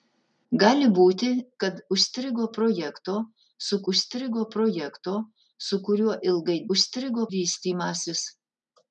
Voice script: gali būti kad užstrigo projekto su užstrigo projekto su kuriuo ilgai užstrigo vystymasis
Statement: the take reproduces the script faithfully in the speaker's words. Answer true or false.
true